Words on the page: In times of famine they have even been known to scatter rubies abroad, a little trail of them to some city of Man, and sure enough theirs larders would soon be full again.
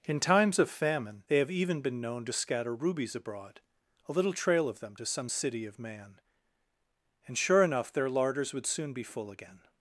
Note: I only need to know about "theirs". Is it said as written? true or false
false